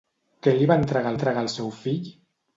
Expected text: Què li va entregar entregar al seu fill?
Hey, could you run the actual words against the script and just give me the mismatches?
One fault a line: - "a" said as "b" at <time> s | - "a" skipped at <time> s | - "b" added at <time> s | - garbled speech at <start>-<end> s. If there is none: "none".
none